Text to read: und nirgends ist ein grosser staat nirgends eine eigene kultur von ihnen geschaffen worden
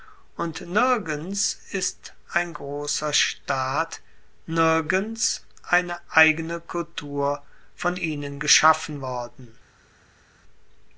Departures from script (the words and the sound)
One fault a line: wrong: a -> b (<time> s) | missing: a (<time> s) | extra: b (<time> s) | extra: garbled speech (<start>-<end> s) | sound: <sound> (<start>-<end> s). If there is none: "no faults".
no faults